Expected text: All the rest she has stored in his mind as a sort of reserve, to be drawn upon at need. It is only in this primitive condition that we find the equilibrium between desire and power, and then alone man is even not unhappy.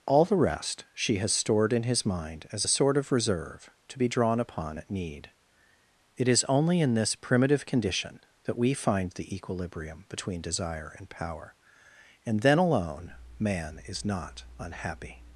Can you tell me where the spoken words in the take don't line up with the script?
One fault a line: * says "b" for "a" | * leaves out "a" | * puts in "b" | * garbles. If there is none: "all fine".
* leaves out "even"